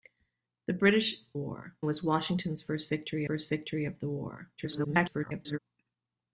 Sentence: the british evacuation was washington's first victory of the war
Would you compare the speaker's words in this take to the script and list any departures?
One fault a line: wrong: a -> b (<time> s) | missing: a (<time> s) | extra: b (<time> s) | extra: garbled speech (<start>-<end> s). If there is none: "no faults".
wrong: evacuation -> war (1.3 s)
extra: first victory (3.2 s)
extra: garbled speech (4.6-5.6 s)